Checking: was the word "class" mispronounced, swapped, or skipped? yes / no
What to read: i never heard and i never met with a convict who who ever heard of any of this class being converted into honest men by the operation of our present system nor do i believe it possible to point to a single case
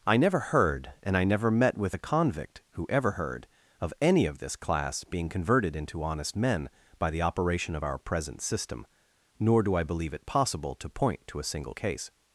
no